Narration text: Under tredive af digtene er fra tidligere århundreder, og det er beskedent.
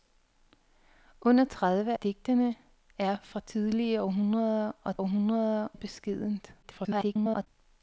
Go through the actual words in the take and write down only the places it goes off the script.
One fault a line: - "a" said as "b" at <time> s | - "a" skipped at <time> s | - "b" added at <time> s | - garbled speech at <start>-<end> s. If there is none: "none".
- "af" skipped at 1.9 s
- "det" said as "århundreder" at 5.0 s
- garbled speech at 6.6-7.5 s